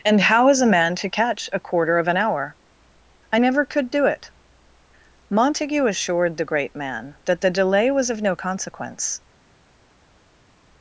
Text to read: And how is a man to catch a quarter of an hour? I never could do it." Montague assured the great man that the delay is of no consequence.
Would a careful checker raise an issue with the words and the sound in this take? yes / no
yes